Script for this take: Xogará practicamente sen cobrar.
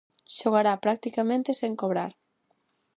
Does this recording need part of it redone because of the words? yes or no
no